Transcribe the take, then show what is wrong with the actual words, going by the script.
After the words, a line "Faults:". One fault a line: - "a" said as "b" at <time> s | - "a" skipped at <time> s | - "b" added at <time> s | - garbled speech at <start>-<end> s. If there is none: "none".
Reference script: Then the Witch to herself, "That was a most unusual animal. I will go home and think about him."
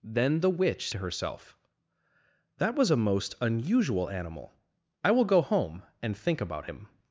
Then the Witch to herself, "That was a most unusual animal. I will go home and think about him."
Faults:
none